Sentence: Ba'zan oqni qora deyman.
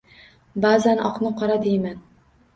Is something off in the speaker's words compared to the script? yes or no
no